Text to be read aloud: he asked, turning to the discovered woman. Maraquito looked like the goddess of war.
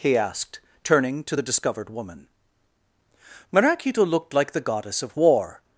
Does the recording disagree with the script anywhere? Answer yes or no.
no